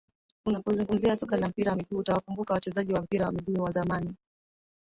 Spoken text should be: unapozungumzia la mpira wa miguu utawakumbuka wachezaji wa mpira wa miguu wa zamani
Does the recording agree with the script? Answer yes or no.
no